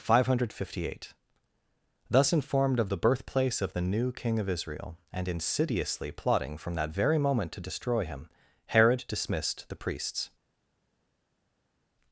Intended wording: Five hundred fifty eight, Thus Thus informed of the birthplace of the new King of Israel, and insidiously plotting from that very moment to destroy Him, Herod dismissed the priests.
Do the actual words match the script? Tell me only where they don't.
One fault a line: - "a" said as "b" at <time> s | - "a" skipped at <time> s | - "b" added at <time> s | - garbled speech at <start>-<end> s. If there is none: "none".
- "Thus" skipped at 2.3 s